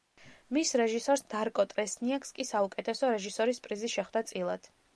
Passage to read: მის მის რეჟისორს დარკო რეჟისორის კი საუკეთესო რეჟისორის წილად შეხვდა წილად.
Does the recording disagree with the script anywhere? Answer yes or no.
yes